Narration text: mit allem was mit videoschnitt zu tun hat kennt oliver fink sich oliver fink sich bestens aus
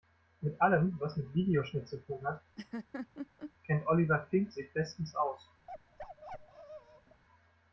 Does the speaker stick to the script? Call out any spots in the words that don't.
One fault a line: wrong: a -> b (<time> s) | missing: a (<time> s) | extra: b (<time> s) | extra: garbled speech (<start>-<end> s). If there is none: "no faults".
missing: oliver fink sich (4.7 s)